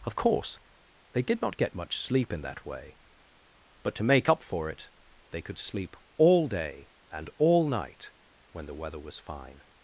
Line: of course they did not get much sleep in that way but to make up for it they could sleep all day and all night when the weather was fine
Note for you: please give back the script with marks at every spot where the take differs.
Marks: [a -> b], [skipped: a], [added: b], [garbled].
of course they did not get much sleep in that way but to make up for it they could sleep all day and all night when the weather was fine